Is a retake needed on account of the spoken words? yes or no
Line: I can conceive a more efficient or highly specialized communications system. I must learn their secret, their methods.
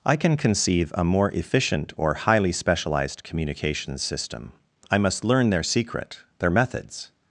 no